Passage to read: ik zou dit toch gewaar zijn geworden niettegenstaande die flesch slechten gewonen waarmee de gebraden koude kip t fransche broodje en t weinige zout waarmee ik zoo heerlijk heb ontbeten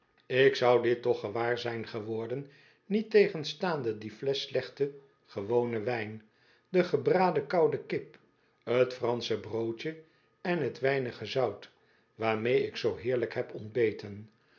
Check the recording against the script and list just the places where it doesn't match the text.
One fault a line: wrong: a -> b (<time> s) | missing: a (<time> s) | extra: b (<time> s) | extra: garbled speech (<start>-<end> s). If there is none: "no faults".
wrong: waarmee -> wijn (5.8 s)